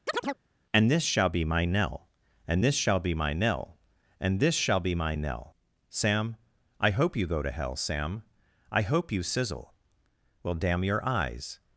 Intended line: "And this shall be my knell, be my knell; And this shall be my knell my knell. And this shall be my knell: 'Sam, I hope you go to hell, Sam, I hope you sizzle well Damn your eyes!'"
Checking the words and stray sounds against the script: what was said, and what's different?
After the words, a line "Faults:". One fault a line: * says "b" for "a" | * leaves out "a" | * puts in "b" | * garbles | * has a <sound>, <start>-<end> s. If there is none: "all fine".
"And this shall be my knell; And this shall be my knell. And this shall be my knell: 'Sam, I hope you go to hell, Sam, I hope you sizzle well Damn your eyes!'"
Faults:
* has a chirp, 0.1-0.4 s
* leaves out "be my knell"
* leaves out "my knell"